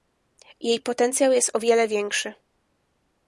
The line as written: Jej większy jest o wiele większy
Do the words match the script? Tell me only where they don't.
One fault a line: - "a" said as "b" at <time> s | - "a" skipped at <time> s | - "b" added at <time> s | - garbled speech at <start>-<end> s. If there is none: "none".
- "większy" said as "potencjał" at 0.8 s